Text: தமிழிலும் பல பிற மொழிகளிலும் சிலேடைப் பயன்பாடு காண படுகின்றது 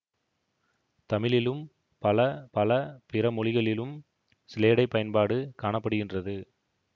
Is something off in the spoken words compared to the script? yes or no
yes